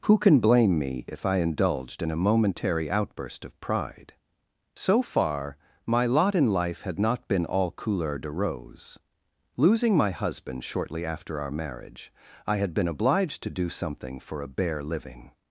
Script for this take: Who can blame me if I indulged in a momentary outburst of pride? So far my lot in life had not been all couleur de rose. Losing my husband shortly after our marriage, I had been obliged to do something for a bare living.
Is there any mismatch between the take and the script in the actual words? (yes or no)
no